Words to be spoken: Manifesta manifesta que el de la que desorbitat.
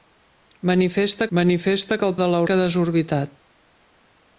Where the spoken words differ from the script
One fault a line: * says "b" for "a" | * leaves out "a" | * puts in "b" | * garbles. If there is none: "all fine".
all fine